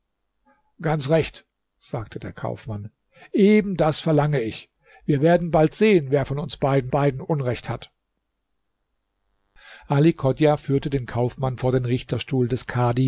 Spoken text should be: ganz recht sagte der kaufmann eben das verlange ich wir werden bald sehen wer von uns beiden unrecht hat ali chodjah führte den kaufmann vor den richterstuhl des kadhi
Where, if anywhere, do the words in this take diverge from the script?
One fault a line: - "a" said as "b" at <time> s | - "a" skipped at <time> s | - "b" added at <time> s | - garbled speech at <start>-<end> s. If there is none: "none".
- "beiden" added at 6.9 s